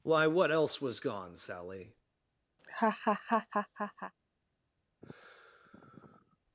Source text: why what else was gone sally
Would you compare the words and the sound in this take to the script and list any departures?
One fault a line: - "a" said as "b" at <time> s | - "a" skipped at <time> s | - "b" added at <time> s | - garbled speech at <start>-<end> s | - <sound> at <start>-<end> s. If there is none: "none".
- laugh at 2.6-4.1 s
- sigh at 5.0-6.4 s